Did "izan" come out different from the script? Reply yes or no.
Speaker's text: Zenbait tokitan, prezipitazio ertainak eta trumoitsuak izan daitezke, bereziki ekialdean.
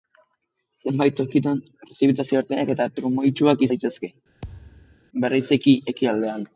yes